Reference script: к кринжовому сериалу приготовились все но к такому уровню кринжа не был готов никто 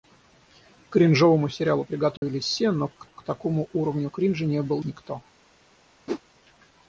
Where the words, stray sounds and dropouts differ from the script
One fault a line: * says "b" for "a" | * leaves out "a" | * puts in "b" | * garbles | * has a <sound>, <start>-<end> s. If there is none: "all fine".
* has a dropout, 2.2-2.2 s
* puts in "к"
* leaves out "готов"
* has a whoosh, 6.1-6.2 s